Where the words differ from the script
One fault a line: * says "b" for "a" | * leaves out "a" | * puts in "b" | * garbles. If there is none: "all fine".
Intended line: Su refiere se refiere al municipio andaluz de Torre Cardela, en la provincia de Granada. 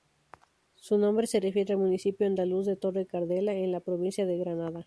* says "nombre" for "refiere"